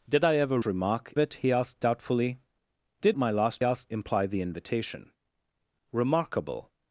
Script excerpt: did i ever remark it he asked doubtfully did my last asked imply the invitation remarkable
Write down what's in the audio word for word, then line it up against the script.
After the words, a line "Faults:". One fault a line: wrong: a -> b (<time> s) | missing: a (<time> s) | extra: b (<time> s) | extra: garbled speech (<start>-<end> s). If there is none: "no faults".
did i ever remark it he asked doubtfully did my last asked imply the invitation remarkable
Faults:
no faults